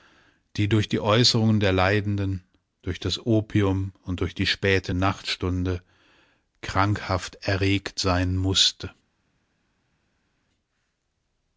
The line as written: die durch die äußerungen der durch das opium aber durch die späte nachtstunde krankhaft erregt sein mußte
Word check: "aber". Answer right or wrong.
wrong